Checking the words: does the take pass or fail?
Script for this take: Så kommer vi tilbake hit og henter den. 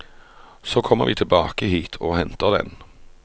pass